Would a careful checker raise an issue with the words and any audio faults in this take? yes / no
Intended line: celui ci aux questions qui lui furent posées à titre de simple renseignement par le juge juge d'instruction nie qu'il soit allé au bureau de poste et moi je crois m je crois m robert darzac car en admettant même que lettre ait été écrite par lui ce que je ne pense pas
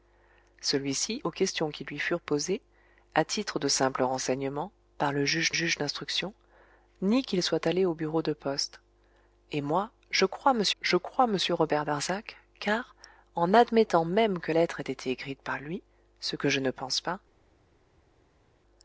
no